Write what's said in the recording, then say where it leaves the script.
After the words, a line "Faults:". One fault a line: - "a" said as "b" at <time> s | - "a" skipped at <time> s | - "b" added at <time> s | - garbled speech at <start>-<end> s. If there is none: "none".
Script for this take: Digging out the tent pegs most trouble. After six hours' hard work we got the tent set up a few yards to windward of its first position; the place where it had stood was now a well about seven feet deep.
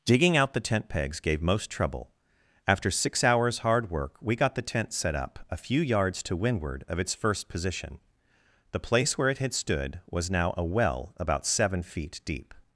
Digging out the tent pegs gave most trouble. After six hours' hard work we got the tent set up a few yards to windward of its first position; the place where it had stood was now a well about seven feet deep.
Faults:
- "gave" added at 1.2 s